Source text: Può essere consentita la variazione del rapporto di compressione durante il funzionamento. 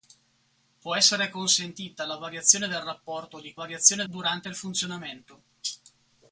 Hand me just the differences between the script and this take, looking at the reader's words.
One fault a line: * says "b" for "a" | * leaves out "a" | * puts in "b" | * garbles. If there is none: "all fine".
* says "variazione" for "compressione"